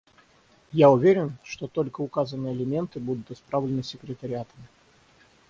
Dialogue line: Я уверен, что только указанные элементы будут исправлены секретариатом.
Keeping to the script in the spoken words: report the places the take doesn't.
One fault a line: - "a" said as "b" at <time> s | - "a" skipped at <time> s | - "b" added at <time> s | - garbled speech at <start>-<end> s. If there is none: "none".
none